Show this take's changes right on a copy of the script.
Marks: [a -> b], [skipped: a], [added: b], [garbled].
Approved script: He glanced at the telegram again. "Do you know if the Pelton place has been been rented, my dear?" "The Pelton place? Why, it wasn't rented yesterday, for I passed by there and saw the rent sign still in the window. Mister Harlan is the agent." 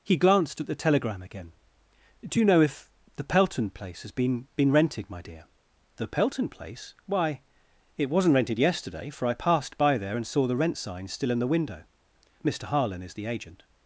He glanced at the telegram again. "Do you know if the Pelton place has been been rented, my dear?" "The Pelton place? Why, it wasn't rented yesterday, for I passed by there and saw the rent sign still in the window. Mister Harlan is the agent."